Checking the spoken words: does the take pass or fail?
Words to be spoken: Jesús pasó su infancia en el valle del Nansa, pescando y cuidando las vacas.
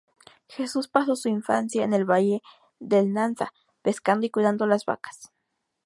pass